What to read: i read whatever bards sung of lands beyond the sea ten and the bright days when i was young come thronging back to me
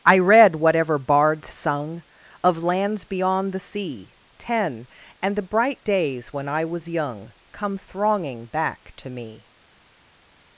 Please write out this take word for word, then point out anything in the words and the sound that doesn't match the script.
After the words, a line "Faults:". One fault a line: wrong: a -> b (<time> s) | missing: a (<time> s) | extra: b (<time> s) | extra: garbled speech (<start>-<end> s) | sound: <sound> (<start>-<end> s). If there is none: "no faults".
i read whatever bards sung of lands beyond the sea ten and the bright days when i was young come thronging back to me
Faults:
no faults